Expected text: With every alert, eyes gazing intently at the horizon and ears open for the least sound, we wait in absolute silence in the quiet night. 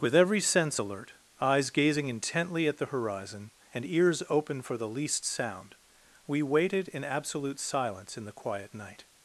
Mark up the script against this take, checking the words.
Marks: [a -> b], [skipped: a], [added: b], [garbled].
With every [added: sense] alert, eyes gazing intently at the horizon and ears open for the least sound, we [wait -> waited] in absolute silence in the quiet night.